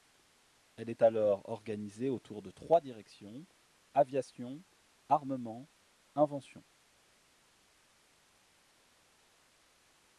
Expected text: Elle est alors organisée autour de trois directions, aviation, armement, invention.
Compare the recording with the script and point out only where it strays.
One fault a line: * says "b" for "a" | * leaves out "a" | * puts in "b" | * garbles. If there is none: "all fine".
all fine